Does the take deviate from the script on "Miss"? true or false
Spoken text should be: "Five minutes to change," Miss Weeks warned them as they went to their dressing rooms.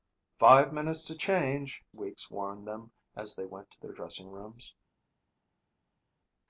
true